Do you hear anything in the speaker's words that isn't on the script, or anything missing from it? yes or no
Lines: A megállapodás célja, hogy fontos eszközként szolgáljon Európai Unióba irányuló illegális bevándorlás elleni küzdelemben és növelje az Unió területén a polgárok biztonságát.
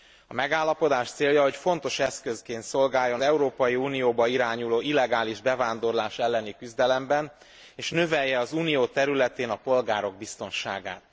no